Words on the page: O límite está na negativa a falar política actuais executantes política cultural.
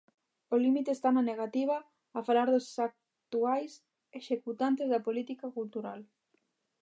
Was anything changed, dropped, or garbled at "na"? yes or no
no